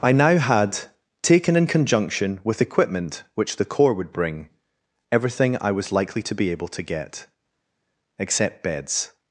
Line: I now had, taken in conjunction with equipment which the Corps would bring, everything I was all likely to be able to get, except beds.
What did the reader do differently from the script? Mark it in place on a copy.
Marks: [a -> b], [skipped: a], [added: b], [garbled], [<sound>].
I now had, taken in conjunction with equipment which the Corps would bring, everything I was [skipped: all] likely to be able to get, except beds.